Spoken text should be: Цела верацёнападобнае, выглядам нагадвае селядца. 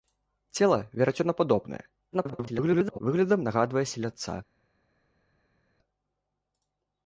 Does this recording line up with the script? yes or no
no